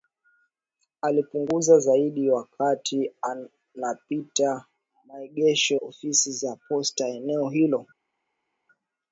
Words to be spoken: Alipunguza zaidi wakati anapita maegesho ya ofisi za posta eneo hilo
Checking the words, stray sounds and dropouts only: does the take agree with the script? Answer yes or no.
no